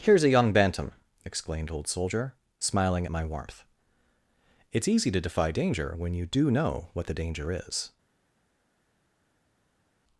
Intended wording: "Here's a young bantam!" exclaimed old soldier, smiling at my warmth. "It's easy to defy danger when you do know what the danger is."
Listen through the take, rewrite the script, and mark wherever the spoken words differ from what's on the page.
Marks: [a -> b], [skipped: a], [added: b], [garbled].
"Here's a young bantam!" exclaimed old soldier, smiling at my warmth. "It's easy to defy danger when you do know what the danger is."